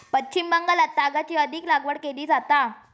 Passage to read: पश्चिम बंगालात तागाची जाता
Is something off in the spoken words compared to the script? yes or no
yes